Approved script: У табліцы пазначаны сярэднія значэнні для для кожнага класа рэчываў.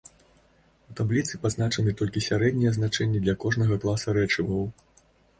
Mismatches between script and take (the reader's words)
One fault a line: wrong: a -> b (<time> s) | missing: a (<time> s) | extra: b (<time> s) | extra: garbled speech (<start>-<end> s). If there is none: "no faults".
extra: толькі (2.0 s)
missing: для (3.4 s)